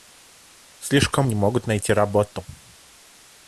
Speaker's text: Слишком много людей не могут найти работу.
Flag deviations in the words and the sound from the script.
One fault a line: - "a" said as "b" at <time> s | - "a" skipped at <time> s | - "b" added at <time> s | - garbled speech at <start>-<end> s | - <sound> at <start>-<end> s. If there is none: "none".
- "много людей" skipped at 1.3 s